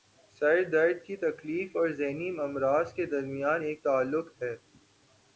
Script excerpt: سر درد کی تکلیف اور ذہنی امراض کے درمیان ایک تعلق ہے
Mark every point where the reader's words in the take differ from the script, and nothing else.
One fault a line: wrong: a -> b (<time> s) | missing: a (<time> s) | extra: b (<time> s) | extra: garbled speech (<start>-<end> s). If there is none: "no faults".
no faults